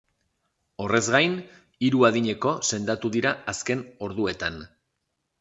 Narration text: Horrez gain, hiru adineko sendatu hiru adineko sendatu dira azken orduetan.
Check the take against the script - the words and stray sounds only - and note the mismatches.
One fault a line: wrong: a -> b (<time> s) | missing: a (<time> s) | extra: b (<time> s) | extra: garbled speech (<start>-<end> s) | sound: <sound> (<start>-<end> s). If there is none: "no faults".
missing: hiru adineko sendatu (3.1 s)